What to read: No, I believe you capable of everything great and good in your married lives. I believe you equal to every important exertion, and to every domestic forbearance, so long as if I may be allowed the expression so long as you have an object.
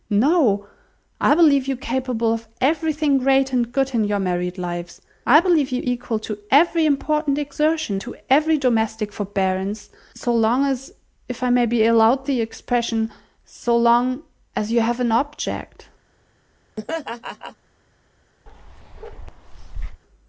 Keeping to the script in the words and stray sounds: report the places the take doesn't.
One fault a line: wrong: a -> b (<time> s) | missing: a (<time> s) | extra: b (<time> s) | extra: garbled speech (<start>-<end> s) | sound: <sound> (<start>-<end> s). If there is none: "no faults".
missing: and (8.0 s)
sound: laugh (16.8-17.6 s)
sound: bark (18.5-20.0 s)